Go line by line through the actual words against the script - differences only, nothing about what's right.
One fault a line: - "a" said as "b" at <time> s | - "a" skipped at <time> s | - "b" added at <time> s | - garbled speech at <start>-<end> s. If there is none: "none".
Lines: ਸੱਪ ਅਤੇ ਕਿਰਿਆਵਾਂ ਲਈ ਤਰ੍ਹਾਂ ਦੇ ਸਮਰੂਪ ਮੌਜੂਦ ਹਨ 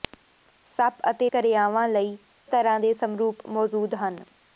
none